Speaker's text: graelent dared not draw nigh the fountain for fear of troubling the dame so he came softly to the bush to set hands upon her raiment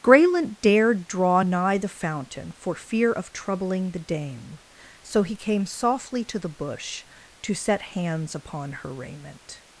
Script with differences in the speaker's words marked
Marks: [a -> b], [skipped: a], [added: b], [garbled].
graelent dared [skipped: not] draw nigh the fountain for fear of troubling the dame so he came softly to the bush to set hands upon her raiment